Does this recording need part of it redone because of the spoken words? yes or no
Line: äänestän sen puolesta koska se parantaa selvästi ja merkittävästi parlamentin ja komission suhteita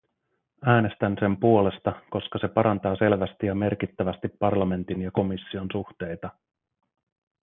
no